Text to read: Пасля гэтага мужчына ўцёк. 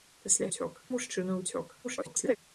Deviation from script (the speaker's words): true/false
true